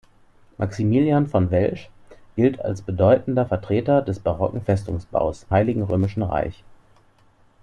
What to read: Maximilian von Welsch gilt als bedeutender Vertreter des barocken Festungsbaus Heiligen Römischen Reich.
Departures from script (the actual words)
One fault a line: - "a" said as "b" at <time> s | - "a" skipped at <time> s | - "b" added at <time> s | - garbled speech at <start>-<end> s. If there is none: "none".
none